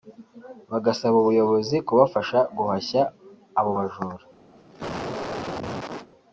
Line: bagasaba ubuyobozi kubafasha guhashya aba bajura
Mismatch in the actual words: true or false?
true